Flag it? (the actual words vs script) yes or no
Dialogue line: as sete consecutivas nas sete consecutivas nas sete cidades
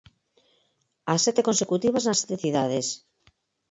yes